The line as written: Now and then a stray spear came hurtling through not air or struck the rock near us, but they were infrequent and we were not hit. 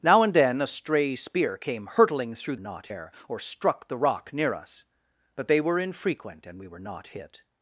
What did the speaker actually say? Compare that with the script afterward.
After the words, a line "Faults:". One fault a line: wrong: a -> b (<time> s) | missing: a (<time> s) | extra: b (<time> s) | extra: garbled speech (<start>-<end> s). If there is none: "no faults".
Now and then a stray spear came hurtling through not air or struck the rock near us, but they were infrequent and we were not hit.
Faults:
no faults